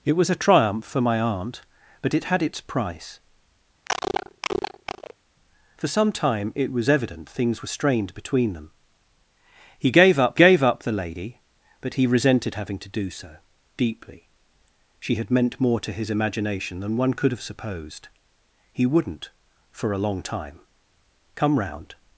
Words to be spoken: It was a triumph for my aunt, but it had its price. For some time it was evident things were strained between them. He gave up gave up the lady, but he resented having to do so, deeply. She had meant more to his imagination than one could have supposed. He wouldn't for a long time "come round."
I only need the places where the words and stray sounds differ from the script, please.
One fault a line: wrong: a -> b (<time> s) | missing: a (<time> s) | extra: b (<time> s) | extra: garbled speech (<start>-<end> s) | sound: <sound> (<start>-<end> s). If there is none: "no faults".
sound: cough (3.9-5.1 s)